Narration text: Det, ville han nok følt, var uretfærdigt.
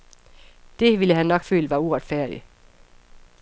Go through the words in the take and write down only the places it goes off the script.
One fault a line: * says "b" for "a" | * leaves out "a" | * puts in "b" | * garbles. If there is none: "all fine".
all fine